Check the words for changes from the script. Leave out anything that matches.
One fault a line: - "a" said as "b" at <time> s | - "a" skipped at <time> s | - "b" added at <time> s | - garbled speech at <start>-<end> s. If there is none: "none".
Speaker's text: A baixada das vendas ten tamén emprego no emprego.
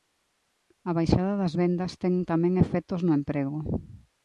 - "emprego" said as "efectos" at 2.6 s